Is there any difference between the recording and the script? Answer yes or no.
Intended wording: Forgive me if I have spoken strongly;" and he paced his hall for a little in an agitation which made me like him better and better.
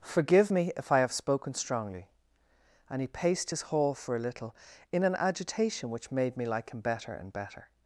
no